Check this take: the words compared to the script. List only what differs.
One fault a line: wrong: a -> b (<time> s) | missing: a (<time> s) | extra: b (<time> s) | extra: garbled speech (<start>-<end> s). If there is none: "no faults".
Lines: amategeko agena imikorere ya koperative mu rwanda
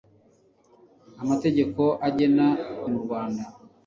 missing: imikorere ya koperative (2.5 s)